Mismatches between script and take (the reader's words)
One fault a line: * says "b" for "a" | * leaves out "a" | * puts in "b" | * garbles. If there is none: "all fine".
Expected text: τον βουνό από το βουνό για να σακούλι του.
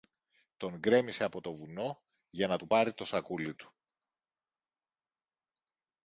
* says "γκρέμισε" for "βουνό"
* puts in "του πάρει το"